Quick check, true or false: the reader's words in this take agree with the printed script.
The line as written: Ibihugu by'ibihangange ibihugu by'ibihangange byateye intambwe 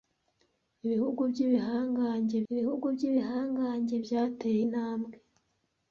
true